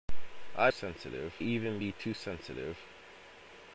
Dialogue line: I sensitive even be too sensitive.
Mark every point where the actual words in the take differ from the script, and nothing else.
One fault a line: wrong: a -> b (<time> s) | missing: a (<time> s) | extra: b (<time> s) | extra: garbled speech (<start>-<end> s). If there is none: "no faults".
no faults